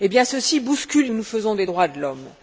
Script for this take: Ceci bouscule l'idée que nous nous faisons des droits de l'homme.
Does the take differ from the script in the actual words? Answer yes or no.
yes